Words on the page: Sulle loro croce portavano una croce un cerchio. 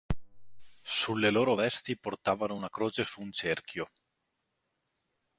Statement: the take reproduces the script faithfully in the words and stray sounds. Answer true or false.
false